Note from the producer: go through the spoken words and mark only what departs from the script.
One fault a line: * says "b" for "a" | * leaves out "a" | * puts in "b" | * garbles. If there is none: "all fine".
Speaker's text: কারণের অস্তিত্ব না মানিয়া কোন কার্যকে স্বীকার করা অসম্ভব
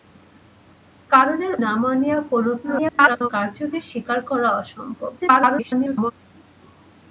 * leaves out "অস্তিত্ব"
* garbles
* garbles